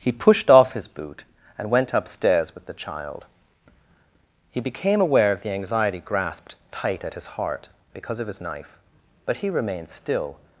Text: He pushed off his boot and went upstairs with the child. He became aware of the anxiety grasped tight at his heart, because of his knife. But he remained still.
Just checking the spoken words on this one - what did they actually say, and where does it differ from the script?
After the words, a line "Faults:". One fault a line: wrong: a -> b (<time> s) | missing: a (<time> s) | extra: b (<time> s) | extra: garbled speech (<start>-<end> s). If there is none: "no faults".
He pushed off his boot and went upstairs with the child. He became aware of the anxiety grasped tight at his heart, because of his knife. But he remained still.
Faults:
no faults